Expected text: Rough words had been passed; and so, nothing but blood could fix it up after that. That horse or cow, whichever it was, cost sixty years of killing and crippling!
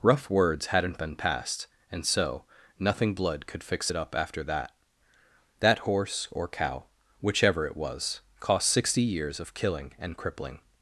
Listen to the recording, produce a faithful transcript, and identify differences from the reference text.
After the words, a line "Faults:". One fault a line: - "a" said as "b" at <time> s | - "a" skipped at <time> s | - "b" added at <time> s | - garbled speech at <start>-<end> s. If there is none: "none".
Rough words hadn't been passed; and so, nothing blood could fix it up after that. That horse or cow, whichever it was, cost sixty years of killing and crippling!
Faults:
- "had" said as "hadn't" at 0.7 s
- "but" skipped at 3.1 s